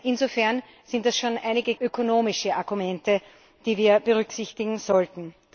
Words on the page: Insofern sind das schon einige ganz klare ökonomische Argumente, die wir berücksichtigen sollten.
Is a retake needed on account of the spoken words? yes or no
yes